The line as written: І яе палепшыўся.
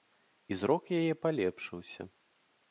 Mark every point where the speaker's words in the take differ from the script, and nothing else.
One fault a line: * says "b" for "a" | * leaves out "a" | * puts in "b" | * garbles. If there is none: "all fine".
* puts in "зрок"